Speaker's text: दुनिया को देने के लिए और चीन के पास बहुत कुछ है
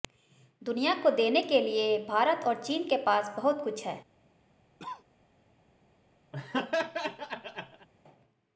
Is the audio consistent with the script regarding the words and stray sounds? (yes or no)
no